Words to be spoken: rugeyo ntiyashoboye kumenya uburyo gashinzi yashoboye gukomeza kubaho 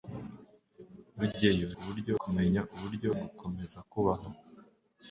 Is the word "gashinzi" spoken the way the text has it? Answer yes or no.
no